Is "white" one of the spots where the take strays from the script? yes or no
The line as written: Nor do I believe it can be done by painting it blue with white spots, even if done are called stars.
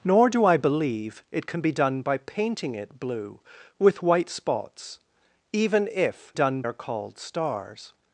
no